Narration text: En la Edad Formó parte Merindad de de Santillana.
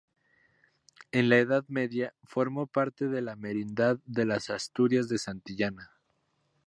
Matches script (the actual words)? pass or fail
fail